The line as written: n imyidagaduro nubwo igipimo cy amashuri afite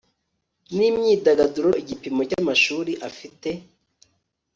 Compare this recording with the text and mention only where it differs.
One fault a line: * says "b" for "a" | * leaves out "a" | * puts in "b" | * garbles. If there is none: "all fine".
* leaves out "nubwo"